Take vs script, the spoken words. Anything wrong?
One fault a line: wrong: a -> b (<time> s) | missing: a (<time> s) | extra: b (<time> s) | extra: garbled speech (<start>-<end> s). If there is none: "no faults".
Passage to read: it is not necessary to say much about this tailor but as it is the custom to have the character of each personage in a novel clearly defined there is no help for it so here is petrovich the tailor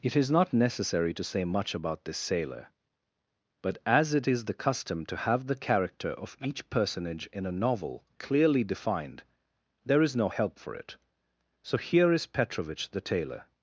wrong: tailor -> sailor (2.2 s)